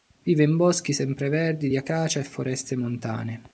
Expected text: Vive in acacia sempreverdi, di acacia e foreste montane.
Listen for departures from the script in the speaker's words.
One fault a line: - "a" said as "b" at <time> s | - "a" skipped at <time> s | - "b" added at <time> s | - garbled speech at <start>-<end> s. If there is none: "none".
- "acacia" said as "boschi" at 0.6 s